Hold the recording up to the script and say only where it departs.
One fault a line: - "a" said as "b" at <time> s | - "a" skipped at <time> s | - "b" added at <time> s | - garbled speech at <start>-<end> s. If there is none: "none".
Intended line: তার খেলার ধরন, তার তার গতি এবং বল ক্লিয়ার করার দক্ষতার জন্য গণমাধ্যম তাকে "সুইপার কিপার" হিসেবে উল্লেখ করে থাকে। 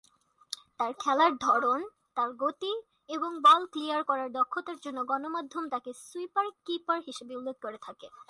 - "তার" skipped at 2.3 s